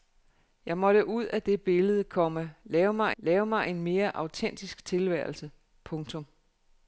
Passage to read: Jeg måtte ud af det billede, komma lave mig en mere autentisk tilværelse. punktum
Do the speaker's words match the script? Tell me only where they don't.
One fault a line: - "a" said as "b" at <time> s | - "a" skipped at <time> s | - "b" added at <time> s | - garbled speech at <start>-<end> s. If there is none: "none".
- "lave mig" added at 3.2 s